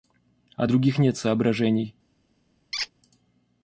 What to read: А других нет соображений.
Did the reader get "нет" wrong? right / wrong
right